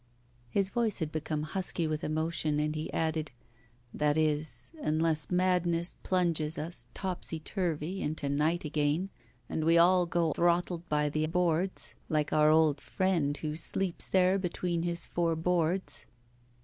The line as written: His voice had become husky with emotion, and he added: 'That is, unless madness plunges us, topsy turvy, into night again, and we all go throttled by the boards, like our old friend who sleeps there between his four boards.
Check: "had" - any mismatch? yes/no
no